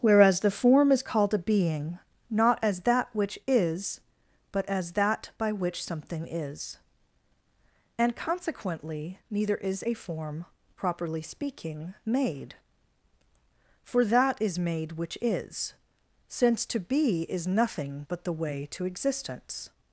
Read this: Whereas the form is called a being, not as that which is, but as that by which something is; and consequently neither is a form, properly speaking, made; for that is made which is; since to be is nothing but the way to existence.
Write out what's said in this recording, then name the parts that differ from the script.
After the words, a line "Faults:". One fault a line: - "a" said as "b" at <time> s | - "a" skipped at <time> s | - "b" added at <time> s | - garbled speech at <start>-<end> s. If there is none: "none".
Whereas the form is called a being, not as that which is, but as that by which something is; and consequently neither is a form, properly speaking, made; for that is made which is; since to be is nothing but the way to existence.
Faults:
none